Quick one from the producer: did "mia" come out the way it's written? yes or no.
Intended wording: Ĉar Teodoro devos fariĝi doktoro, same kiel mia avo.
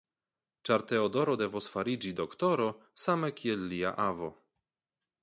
no